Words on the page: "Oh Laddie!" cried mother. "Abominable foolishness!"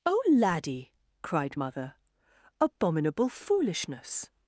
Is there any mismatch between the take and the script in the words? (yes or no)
no